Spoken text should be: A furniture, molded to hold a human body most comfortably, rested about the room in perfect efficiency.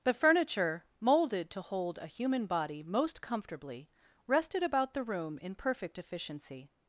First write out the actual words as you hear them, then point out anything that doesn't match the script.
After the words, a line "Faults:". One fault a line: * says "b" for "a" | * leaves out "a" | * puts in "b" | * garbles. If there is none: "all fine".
The furniture, molded to hold a human body most comfortably, rested about the room in perfect efficiency.
Faults:
* says "The" for "A"